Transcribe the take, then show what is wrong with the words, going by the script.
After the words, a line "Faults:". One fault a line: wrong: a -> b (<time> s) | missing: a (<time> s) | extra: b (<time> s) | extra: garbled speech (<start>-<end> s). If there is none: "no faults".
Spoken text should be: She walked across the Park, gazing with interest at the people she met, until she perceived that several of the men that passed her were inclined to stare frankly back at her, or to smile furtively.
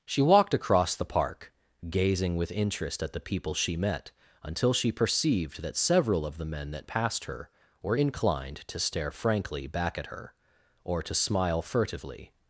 She walked across the Park, gazing with interest at the people she met, until she perceived that several of the men that passed her were inclined to stare frankly back at her, or to smile furtively.
Faults:
no faults